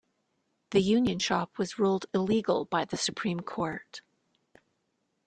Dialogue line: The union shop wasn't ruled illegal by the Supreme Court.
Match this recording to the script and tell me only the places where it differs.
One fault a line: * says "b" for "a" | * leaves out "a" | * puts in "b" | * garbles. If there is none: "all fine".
* says "was" for "wasn't"